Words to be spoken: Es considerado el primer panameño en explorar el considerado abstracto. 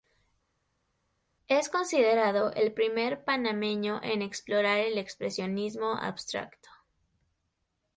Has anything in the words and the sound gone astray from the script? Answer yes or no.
yes